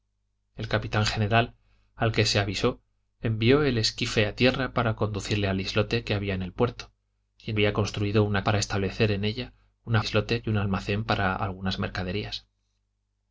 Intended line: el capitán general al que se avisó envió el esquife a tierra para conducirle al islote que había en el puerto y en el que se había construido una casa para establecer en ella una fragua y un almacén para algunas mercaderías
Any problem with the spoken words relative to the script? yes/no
yes